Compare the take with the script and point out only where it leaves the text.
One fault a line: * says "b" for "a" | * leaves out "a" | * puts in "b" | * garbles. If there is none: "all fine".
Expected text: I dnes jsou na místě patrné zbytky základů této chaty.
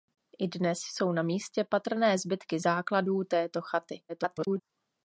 * garbles